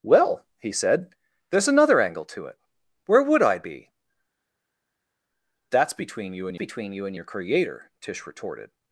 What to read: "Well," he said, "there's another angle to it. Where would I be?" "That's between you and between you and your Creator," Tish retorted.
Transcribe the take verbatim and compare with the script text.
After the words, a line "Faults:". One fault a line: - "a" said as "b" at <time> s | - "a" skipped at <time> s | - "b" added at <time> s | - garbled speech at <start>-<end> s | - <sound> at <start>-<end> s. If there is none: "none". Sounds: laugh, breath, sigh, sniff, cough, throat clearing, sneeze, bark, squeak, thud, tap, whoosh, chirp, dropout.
"Well," he said, "there's another angle to it. Where would I be?" "That's between you and between you and your Creator," Tish retorted.
Faults:
none